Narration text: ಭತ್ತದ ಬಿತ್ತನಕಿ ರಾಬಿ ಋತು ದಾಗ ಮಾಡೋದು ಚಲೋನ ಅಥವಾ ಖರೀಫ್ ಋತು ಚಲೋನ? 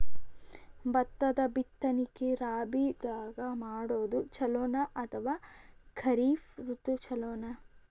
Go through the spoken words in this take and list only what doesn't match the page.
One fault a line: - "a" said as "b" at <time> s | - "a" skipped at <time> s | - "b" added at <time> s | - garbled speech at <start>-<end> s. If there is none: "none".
- "ಋತು" skipped at 2.9 s